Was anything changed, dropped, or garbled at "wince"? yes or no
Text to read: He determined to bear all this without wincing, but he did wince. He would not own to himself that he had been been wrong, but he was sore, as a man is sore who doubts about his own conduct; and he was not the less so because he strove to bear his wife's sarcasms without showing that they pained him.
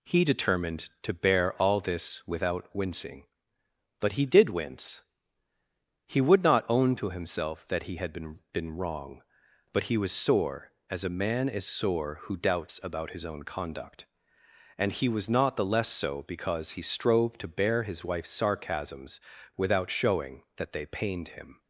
no